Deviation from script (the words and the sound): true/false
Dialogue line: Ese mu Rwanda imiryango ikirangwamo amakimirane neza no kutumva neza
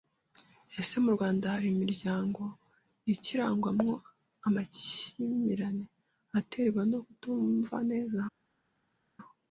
true